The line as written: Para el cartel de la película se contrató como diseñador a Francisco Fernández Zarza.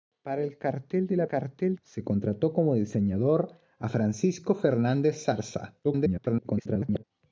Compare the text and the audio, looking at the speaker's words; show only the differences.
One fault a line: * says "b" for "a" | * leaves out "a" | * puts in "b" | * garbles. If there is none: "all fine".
* says "cartel" for "película"
* garbles